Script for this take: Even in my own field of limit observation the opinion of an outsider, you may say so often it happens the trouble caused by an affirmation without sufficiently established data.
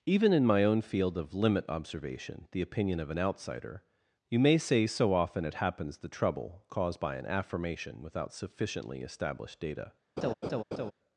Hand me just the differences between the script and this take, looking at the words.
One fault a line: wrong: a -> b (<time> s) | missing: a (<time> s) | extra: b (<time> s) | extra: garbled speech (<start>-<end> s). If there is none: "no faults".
no faults